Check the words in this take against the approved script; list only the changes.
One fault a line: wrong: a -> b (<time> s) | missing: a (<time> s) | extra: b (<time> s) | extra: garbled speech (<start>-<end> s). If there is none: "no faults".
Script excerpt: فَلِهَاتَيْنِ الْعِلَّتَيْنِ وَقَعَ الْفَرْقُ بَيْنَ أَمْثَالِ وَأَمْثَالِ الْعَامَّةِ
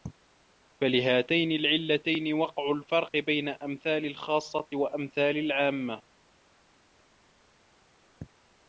extra: الْخَاصَّةِ (4.0 s)